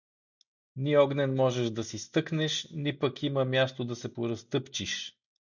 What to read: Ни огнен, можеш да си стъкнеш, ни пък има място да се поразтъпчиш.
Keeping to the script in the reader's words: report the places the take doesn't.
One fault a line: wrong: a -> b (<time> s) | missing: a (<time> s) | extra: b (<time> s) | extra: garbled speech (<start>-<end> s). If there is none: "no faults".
no faults